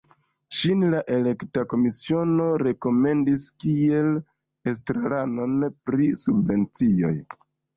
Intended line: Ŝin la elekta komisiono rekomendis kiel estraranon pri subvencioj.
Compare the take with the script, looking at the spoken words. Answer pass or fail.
pass